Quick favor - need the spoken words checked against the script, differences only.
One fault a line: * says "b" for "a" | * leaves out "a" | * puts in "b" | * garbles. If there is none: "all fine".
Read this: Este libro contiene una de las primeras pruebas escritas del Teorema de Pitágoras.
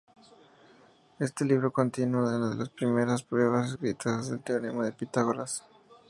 all fine